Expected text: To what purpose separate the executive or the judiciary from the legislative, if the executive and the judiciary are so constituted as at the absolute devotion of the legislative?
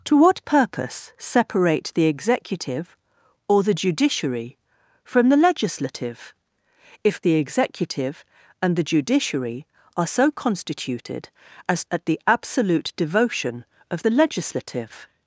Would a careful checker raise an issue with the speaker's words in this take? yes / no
no